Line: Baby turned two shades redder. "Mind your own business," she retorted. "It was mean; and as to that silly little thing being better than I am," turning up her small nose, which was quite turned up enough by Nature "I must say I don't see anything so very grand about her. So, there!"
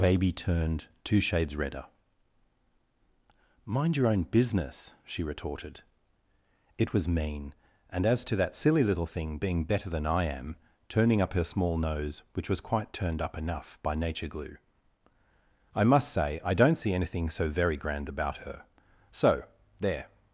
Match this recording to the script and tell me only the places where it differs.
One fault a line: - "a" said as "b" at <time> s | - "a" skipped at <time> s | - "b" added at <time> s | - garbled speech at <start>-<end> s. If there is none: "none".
- "glue" added at 14.3 s